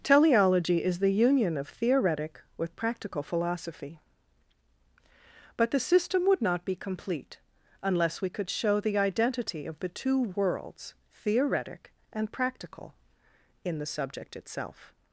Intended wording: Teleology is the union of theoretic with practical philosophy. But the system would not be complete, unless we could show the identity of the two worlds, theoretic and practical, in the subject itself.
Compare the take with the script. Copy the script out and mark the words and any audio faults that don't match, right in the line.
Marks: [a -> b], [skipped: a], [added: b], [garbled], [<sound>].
Teleology is the union of theoretic with practical philosophy. But the system would not be complete, unless we could show the identity of the two worlds, theoretic and practical, in the subject itself.